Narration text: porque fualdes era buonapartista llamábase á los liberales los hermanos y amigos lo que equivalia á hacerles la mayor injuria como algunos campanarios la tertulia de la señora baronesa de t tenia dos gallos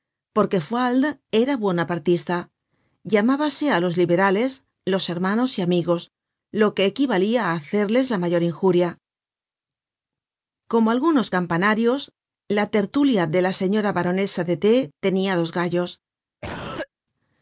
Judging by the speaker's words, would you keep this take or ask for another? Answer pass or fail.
pass